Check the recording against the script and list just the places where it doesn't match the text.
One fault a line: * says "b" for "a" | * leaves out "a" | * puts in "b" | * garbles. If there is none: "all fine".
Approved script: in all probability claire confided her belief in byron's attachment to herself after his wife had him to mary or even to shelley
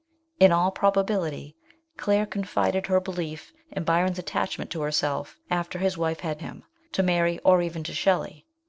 all fine